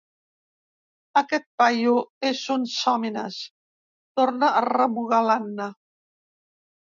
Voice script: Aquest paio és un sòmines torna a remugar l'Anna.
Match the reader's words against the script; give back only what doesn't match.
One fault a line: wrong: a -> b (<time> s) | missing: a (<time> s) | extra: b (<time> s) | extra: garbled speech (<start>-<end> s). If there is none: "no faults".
no faults